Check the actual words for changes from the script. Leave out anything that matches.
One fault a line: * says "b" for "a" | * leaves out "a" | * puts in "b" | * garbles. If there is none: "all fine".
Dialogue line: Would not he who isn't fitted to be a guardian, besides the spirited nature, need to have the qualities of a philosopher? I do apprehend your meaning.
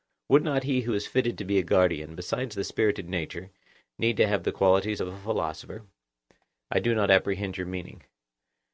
* says "is" for "isn't"
* puts in "not"